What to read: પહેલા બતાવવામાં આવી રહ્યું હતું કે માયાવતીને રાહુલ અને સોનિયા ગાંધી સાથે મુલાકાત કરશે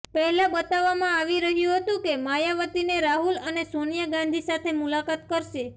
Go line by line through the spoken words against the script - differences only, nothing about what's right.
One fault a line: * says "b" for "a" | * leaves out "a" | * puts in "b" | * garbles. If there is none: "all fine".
all fine